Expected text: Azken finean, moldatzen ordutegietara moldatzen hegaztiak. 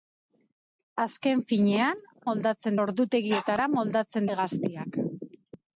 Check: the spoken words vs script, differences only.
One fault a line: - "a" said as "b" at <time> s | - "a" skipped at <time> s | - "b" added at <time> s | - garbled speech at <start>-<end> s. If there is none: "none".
none